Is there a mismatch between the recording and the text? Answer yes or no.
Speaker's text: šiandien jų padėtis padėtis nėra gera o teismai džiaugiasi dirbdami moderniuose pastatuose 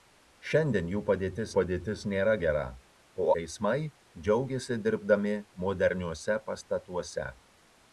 no